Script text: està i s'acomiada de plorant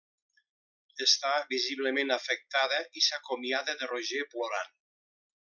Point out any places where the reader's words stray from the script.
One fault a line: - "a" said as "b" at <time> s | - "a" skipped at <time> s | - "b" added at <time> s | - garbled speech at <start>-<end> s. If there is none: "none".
- "visiblement afectada" added at 1.5 s
- "roger" added at 3.9 s